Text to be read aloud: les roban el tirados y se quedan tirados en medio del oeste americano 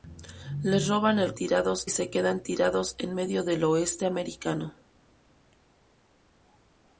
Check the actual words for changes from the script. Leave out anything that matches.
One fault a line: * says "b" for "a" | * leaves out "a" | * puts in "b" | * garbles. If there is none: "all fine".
all fine